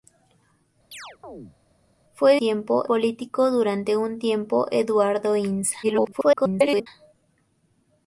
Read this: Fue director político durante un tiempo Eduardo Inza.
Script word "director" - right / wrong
wrong